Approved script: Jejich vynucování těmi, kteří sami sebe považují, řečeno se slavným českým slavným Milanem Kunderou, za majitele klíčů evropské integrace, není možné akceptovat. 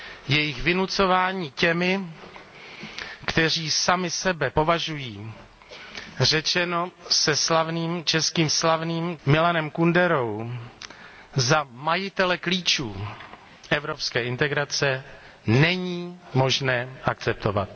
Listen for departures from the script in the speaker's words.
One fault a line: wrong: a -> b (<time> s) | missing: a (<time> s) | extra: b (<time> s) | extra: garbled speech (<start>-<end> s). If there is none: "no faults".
no faults